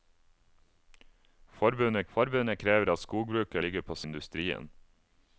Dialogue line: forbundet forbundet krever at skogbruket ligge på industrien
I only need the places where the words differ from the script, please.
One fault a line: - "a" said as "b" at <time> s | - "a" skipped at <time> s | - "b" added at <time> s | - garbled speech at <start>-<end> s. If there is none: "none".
none